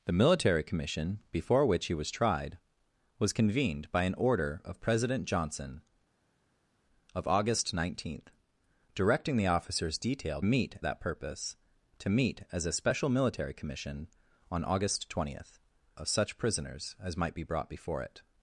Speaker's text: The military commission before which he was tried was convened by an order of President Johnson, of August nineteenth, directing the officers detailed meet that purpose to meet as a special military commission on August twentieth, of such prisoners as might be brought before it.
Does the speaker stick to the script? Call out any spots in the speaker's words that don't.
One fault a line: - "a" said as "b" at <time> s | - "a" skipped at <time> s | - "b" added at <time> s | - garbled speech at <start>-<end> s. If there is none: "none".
none